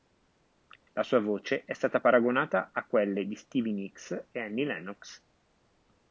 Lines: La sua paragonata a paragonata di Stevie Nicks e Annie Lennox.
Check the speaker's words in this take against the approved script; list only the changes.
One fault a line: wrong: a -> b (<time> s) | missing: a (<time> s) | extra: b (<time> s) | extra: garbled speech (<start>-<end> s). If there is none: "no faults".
extra: voce è stata (1.2 s)
wrong: paragonata -> quelle (2.9 s)